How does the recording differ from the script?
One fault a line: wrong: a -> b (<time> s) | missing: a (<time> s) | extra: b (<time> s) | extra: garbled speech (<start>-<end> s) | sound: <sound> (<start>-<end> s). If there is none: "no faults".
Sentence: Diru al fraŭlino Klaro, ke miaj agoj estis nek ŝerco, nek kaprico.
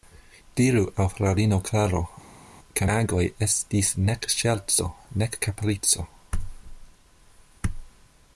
missing: miaj (2.9 s)